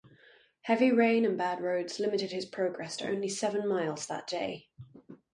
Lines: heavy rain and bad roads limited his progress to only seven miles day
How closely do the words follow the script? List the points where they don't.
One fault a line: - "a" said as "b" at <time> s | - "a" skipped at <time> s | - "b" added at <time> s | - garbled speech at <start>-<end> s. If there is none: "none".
- "that" added at 4.1 s